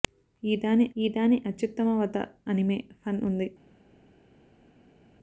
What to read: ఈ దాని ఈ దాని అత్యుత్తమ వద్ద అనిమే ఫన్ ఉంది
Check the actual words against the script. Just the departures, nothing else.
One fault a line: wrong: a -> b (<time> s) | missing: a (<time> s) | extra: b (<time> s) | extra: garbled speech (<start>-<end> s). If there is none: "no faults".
no faults